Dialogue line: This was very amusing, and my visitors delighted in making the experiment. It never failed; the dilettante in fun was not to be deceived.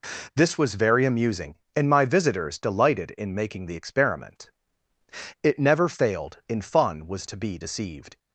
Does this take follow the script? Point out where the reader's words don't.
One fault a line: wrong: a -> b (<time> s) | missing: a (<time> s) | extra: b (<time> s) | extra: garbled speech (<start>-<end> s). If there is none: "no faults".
missing: the dilettante (6.4 s)
missing: not (7.3 s)